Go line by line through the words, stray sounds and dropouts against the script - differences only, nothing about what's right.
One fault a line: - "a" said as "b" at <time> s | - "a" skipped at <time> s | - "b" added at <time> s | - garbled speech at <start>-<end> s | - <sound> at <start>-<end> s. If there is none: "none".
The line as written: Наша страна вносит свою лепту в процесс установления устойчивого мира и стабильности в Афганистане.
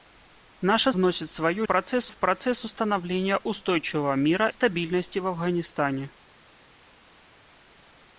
- "страна" skipped at 0.9 s
- "лепту" said as "процесс" at 1.6 s
- "и" skipped at 4.5 s